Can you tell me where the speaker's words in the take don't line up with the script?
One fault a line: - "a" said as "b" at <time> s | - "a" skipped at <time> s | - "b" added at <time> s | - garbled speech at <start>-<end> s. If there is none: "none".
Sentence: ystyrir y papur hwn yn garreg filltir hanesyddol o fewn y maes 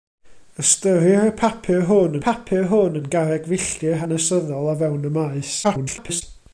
- "papur hwn" added at 2.3 s
- garbled speech at 5.6-6.2 s